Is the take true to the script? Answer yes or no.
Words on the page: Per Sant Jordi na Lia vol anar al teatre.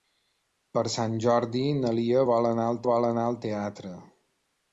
no